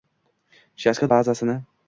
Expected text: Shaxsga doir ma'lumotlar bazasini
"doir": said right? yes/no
no